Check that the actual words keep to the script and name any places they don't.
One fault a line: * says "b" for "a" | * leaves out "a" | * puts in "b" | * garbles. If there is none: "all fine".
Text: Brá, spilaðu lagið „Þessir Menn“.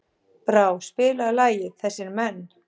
all fine